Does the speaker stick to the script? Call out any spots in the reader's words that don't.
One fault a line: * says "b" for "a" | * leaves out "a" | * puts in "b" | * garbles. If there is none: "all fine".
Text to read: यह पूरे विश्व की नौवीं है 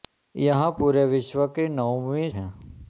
all fine